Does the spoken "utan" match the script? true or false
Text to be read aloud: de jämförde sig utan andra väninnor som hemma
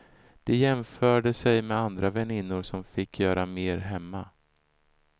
false